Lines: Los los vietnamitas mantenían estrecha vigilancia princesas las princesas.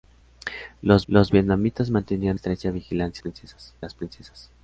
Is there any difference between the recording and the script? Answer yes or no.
no